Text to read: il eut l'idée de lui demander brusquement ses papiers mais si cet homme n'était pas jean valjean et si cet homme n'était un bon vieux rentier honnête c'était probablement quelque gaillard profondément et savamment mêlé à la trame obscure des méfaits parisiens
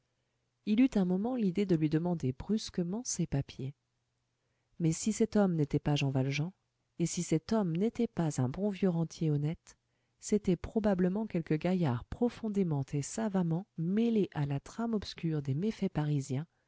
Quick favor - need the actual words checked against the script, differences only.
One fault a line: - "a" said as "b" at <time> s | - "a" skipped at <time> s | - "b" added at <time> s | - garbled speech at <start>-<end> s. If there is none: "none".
- "un moment" added at 0.9 s
- "pas" added at 8.1 s